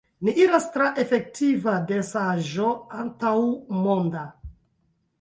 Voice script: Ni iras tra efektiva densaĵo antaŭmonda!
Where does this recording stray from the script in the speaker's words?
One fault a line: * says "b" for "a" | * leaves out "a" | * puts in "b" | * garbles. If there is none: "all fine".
all fine